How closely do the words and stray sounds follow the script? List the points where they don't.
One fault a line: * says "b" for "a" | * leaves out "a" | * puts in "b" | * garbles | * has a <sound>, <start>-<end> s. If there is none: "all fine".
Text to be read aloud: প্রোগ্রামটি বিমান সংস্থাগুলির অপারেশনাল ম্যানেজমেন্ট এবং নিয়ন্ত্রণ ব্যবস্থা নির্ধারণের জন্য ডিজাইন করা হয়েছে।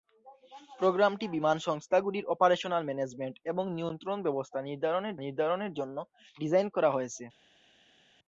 * puts in "নির্ধারণের"